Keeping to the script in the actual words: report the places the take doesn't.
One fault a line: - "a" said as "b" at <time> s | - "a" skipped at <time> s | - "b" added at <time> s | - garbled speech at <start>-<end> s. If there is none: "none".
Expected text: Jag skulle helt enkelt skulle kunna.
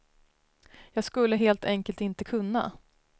- "skulle" said as "inte" at 2.0 s